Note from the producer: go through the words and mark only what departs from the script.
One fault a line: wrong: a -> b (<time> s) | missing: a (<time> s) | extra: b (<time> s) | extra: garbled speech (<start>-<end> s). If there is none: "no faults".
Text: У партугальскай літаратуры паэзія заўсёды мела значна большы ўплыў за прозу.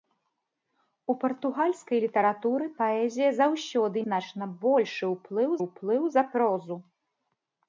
missing: мела (4.0 s)
extra: ўплыў (5.7 s)